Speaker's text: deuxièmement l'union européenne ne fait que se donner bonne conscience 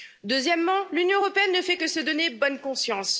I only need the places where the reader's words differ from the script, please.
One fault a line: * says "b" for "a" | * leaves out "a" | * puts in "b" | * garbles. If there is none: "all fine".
all fine